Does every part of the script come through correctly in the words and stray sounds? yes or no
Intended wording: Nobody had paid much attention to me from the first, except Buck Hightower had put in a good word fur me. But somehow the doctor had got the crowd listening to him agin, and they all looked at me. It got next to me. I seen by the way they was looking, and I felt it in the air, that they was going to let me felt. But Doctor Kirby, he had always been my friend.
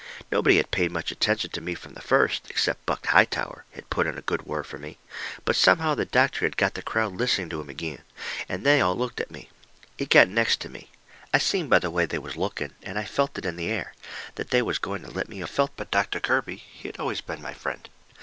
yes